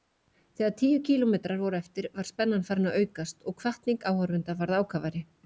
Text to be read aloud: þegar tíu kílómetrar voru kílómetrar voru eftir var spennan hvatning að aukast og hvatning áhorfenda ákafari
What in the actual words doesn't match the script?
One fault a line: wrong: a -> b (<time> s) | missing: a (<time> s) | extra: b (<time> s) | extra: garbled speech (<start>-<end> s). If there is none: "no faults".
missing: kílómetrar voru (1.8 s)
wrong: hvatning -> farin (2.7 s)
extra: varð (4.7 s)